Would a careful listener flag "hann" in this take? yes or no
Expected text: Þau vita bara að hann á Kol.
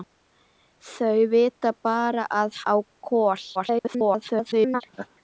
yes